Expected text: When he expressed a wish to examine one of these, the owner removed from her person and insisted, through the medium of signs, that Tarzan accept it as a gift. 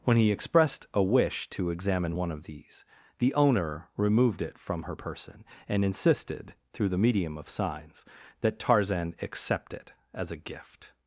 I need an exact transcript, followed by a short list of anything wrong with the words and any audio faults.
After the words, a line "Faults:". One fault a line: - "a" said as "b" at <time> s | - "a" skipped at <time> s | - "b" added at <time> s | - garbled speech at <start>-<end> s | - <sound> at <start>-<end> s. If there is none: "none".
When he expressed a wish to examine one of these, the owner removed it from her person and insisted, through the medium of signs, that Tarzan accept it as a gift.
Faults:
- "it" added at 4.4 s